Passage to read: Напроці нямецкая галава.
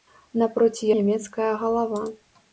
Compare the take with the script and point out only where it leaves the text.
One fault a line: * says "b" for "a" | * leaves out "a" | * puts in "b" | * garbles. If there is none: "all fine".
all fine